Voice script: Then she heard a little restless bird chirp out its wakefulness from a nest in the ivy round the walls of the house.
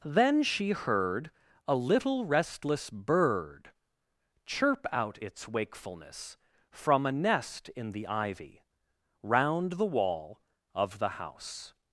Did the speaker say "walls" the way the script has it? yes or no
no